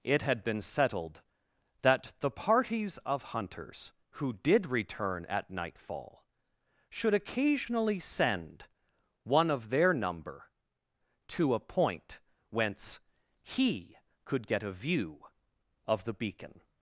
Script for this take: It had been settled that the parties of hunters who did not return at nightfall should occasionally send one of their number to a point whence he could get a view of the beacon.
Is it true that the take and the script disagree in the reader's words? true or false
true